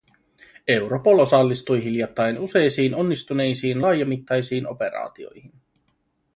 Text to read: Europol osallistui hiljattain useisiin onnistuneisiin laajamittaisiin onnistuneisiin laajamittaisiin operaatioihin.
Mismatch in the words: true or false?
true